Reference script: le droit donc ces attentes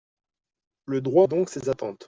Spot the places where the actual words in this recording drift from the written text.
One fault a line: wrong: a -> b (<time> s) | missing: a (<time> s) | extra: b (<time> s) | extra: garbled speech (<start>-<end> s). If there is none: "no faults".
no faults